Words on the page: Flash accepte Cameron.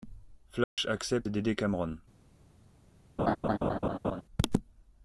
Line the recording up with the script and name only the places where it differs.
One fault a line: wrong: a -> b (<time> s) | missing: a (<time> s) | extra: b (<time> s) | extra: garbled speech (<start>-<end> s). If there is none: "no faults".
extra: d'aider (1.3 s)